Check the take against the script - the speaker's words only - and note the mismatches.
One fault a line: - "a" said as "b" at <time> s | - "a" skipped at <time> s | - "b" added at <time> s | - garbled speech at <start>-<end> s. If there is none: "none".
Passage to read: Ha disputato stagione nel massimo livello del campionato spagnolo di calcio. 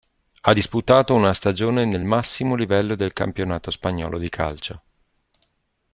- "una" added at 1.1 s